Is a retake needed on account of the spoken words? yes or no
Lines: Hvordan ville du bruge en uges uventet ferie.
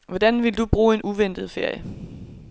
yes